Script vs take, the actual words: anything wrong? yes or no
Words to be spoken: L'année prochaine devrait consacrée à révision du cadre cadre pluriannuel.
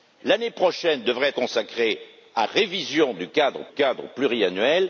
no